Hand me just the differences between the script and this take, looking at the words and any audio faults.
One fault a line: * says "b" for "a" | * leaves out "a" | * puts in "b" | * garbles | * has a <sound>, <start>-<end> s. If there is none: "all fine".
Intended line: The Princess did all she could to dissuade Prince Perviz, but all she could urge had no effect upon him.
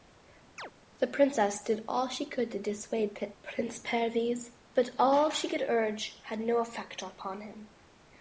* has a chirp, 0.6-0.7 s